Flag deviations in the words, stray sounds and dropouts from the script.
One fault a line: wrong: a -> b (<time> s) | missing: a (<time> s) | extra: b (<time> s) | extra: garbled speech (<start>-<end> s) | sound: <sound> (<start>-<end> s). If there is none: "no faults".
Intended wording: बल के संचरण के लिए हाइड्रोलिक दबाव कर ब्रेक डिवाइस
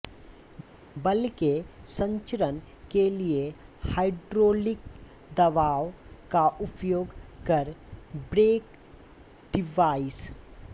extra: का उपयोग (6.3 s)